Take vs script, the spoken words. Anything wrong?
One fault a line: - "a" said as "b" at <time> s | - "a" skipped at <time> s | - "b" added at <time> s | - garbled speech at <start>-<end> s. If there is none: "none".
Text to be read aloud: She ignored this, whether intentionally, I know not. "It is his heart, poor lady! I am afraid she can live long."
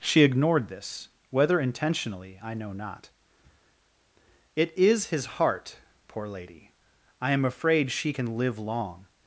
none